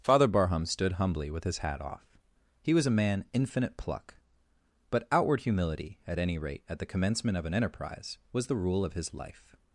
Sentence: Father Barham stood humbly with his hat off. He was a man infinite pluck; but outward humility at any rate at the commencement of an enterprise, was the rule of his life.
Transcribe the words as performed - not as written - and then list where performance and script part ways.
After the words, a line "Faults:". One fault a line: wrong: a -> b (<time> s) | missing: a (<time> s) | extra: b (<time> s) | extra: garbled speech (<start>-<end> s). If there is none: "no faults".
Father Barham stood humbly with his hat off. He was a man infinite pluck; but outward humility at any rate at the commencement of an enterprise, was the rule of his life.
Faults:
no faults